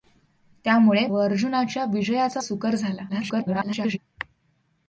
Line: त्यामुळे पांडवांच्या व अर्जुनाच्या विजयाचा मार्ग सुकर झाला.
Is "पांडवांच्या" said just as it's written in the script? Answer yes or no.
no